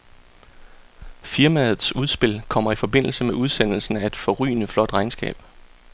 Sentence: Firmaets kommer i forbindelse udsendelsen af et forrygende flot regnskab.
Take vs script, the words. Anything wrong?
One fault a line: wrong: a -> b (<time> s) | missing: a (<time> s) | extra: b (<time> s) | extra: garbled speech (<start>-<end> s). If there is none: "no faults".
extra: udspil (1.9 s)
extra: med (3.2 s)